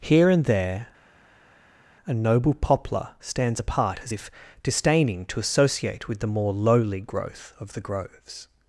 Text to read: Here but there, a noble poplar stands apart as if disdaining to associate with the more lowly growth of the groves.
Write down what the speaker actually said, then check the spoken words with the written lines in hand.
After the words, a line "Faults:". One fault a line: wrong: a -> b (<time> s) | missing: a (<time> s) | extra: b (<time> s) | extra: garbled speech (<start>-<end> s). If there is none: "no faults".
Here and there, a noble poplar stands apart as if disdaining to associate with the more lowly growth of the groves.
Faults:
wrong: but -> and (0.3 s)